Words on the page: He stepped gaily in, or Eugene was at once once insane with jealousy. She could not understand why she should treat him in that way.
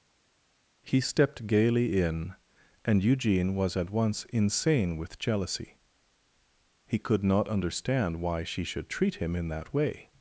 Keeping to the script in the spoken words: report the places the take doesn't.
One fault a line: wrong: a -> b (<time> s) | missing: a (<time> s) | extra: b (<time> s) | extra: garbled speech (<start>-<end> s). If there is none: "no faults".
wrong: or -> and (2.8 s)
missing: once (4.2 s)
wrong: She -> He (6.9 s)